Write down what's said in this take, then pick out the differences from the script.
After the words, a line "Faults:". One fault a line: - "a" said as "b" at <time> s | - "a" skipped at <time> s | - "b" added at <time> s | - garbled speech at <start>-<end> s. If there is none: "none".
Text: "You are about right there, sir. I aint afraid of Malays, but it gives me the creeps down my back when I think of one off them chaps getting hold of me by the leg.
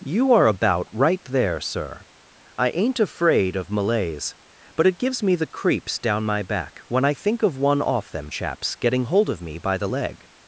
"You are about right there, sir. I aint afraid of Malays, but it gives me the creeps down my back when I think of one off them chaps getting hold of me by the leg.
Faults:
none